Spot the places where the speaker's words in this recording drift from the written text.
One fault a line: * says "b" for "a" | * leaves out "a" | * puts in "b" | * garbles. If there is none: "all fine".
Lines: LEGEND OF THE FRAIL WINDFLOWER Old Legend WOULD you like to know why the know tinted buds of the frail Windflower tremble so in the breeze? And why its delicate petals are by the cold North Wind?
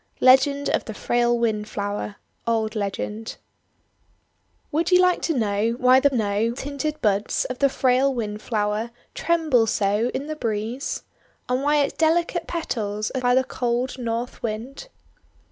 all fine